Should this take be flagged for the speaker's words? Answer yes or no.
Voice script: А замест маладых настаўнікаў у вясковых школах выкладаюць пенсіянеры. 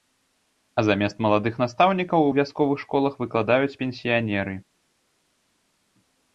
no